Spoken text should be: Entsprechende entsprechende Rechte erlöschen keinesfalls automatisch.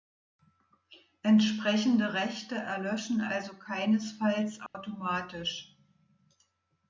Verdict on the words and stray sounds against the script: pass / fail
fail